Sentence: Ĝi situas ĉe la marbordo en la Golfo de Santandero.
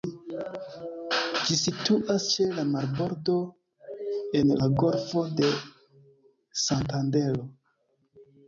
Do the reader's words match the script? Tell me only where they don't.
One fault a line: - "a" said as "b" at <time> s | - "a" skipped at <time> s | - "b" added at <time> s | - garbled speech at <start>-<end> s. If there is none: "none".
none